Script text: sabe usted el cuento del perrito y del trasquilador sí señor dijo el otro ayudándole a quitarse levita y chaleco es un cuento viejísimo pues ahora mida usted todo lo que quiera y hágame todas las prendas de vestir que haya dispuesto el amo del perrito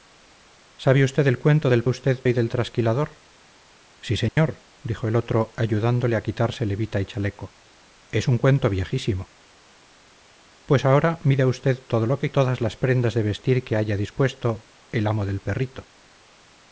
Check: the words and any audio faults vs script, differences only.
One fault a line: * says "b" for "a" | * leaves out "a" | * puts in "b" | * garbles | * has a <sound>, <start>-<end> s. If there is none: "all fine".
* says "usted" for "perrito"
* has a dropout, 4.3-4.4 s
* leaves out "quiera y hágame"